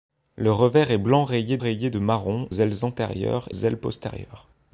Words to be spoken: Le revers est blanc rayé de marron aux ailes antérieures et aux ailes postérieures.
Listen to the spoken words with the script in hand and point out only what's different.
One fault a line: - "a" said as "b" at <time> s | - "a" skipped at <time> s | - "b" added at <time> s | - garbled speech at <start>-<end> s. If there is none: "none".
- "rayé" added at 1.6 s
- "aux" skipped at 2.5 s
- "et aux" skipped at 3.5 s